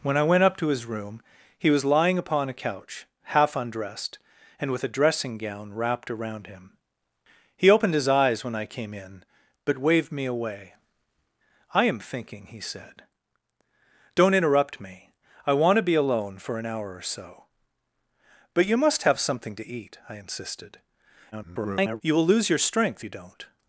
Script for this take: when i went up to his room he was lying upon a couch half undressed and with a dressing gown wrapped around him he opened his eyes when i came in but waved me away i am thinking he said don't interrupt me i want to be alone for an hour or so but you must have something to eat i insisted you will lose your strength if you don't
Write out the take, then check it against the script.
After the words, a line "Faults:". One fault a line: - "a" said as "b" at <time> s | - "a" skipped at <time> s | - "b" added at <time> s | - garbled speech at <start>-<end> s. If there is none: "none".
when i went up to his room he was lying upon a couch half undressed and with a dressing gown wrapped around him he opened his eyes when i came in but waved me away i am thinking he said don't interrupt me i want to be alone for an hour or so but you must have something to eat i insisted [garbled] you will lose your strength you don't
Faults:
- garbled speech at 21.3-22.0 s
- "if" skipped at 23.0 s